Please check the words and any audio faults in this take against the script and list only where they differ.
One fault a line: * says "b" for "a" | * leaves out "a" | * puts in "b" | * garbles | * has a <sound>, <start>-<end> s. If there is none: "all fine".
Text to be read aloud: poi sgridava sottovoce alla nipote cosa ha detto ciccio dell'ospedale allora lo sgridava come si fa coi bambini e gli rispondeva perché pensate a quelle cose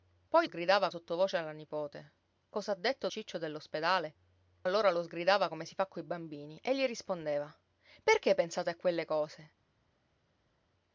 all fine